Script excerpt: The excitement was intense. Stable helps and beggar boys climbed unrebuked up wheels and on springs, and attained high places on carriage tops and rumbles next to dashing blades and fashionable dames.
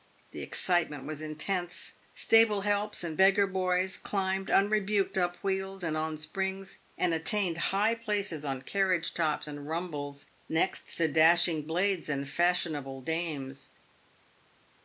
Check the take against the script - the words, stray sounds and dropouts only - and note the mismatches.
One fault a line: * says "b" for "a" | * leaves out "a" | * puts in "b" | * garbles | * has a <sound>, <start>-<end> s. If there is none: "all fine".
all fine